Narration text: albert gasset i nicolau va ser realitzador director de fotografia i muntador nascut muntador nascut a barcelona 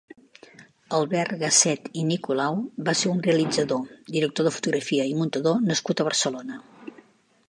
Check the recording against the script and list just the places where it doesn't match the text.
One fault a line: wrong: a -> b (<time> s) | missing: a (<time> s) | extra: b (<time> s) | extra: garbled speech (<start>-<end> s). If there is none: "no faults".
extra: un (3.1 s)
missing: muntador nascut (6.0 s)